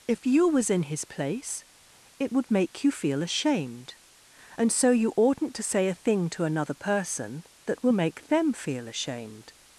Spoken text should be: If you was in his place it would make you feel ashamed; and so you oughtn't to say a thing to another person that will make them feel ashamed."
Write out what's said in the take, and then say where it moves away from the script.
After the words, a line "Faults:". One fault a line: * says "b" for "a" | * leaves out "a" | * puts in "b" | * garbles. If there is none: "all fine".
If you was in his place it would make you feel ashamed; and so you oughtn't to say a thing to another person that will make them feel ashamed."
Faults:
all fine